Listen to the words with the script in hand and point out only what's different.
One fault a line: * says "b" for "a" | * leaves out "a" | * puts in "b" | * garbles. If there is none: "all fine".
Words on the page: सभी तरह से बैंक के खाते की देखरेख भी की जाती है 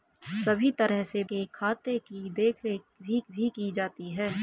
* leaves out "बैंक"
* puts in "भी"